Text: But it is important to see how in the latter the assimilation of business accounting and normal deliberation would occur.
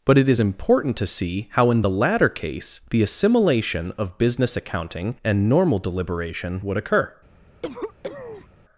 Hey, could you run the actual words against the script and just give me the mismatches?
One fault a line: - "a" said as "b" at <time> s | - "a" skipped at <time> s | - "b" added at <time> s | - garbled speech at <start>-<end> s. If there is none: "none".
- "case" added at 2.3 s